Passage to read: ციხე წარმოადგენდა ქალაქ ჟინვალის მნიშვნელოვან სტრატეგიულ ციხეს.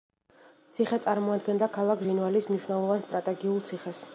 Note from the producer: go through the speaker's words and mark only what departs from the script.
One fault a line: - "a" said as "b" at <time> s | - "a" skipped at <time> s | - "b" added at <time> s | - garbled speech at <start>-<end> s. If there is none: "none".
none